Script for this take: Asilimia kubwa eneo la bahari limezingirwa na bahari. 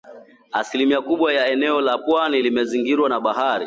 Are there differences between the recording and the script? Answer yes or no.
yes